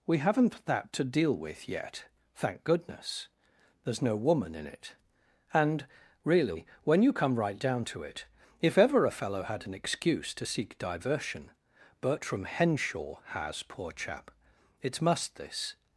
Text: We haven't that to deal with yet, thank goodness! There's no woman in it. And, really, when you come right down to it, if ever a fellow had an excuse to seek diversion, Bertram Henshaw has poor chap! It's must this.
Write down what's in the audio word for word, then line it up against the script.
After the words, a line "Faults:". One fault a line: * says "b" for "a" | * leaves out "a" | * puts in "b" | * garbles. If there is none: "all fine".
We haven't that to deal with yet, thank goodness! There's no woman in it. And, really, when you come right down to it, if ever a fellow had an excuse to seek diversion, Bertram Henshaw has poor chap! It's must this.
Faults:
all fine